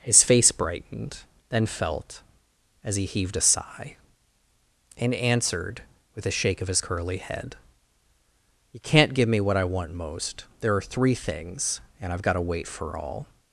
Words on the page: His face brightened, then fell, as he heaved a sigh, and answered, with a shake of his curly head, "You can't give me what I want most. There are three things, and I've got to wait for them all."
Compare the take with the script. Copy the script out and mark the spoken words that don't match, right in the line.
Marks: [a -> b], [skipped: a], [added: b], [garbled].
His face brightened, then [fell, -> felt] as he heaved a sigh, and answered, with a shake of his curly head, "You can't give me what I want most. There are three things, and I've got to wait for [skipped: them] all."